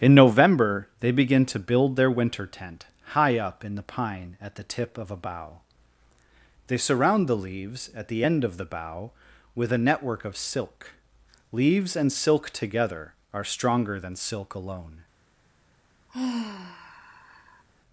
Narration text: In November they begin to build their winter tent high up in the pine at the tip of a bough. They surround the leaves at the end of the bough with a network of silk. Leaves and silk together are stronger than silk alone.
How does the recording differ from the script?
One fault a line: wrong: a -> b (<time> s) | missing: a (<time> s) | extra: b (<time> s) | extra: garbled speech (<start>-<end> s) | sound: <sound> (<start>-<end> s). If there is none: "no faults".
sound: sigh (16.1-17.6 s)